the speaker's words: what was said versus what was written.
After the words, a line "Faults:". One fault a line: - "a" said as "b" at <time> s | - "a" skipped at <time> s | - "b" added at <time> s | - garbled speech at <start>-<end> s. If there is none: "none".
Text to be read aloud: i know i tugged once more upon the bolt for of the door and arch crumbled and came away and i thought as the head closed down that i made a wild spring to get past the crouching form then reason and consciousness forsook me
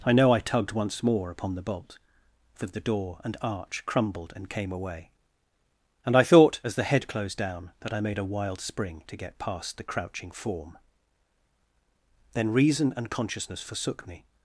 i know i tugged once more upon the bolt for of the door and arch crumbled and came away and i thought as the head closed down that i made a wild spring to get past the crouching form then reason and consciousness forsook me
Faults:
none